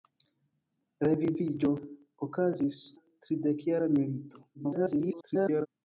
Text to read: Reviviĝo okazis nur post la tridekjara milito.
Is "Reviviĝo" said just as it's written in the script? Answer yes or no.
yes